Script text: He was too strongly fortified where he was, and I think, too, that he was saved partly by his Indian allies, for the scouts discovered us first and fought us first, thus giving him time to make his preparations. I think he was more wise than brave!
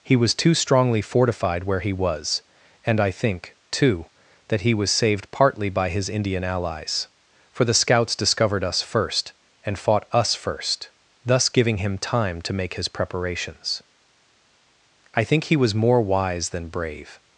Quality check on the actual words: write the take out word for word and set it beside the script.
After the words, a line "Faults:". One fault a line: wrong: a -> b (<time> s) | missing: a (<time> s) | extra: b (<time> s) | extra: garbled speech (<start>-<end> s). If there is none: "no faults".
He was too strongly fortified where he was, and I think, too, that he was saved partly by his Indian allies, for the scouts discovered us first and fought us first, thus giving him time to make his preparations. I think he was more wise than brave!
Faults:
no faults